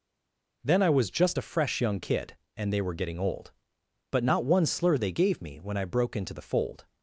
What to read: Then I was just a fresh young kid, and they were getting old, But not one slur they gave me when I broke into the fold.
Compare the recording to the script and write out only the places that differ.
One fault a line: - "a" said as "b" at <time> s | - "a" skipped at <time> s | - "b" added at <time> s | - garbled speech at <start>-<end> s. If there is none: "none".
none